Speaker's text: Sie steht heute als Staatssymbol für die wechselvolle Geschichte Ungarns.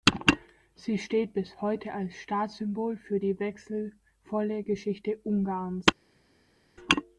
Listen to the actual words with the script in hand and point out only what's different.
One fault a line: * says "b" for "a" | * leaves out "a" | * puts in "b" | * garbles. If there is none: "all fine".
* puts in "bis"